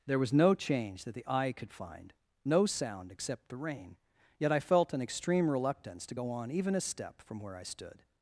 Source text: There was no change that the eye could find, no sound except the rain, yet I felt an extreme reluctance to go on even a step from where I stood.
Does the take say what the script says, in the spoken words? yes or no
yes